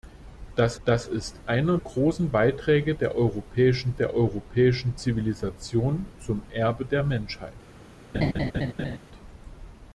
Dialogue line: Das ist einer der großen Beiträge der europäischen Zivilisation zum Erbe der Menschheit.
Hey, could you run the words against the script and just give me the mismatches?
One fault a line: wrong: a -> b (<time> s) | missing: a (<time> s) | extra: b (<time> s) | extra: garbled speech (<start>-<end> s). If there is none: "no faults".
extra: das (0.8 s)
missing: der (1.8 s)
extra: der europäischen (3.9 s)